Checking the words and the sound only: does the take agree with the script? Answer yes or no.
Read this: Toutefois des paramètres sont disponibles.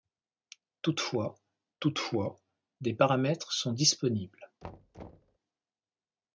no